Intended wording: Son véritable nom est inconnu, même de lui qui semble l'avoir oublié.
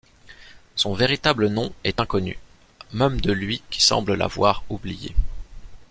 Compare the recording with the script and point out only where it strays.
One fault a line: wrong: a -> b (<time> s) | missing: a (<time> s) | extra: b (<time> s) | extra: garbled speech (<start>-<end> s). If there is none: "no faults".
no faults